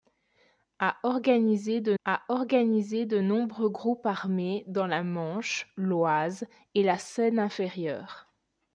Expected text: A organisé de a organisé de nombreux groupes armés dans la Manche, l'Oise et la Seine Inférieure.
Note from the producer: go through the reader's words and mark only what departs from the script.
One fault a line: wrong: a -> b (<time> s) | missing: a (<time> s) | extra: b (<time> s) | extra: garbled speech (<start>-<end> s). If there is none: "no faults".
no faults